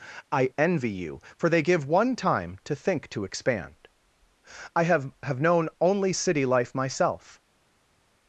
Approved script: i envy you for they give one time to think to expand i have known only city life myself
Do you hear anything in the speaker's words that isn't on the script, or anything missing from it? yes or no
yes